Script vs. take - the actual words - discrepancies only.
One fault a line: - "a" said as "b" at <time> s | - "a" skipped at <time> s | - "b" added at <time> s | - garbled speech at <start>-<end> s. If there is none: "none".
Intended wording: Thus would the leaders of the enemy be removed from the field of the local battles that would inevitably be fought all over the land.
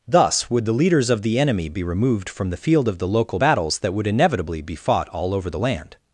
none